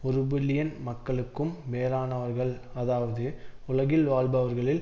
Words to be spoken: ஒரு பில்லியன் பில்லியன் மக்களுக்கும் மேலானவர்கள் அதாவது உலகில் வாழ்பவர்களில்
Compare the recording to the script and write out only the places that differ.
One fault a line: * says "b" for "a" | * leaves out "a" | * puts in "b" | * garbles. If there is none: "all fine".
* leaves out "பில்லியன்"